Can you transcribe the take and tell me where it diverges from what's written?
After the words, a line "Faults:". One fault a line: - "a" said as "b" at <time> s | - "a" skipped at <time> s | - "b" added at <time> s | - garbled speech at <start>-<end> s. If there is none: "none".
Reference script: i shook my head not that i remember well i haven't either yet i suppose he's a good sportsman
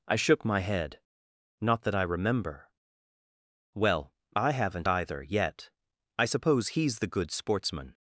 i shook my head not that i remember well i haven't either yet i suppose he's the good sportsman
Faults:
- "a" said as "the" at 7.0 s